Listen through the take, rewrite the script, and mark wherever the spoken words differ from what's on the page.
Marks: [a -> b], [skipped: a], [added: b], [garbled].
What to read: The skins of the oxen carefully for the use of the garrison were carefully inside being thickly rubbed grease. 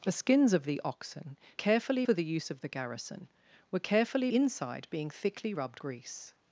The skins of the oxen carefully for the use of the garrison were carefully inside being thickly rubbed grease.